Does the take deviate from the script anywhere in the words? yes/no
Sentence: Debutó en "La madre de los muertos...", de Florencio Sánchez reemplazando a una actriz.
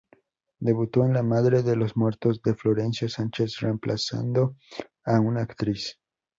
no